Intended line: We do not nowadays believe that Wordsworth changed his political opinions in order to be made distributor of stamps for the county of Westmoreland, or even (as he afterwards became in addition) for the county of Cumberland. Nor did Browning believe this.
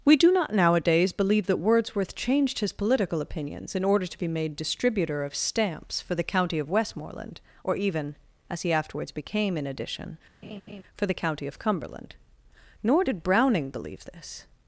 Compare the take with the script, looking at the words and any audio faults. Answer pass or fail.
fail